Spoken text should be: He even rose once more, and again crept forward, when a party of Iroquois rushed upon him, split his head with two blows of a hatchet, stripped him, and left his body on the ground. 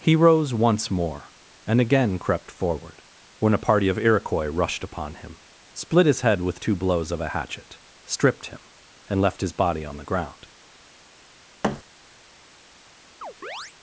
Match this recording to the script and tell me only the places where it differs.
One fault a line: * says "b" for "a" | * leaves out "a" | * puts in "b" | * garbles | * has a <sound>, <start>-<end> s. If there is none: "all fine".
* leaves out "even"
* has a thud, 11.6-11.8 s
* has a chirp, 13.2-13.7 s